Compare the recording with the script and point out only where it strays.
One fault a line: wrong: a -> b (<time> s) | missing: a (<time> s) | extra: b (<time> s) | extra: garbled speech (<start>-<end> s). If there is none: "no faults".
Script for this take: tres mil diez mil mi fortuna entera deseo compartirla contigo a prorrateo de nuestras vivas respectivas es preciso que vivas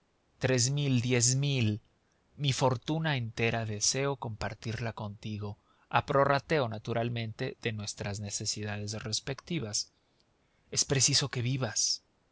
extra: naturalmente (6.7 s)
wrong: vivas -> necesidades (8.2 s)